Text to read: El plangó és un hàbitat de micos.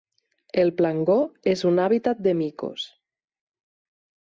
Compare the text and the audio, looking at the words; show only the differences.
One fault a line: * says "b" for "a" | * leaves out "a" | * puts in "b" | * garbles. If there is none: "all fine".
all fine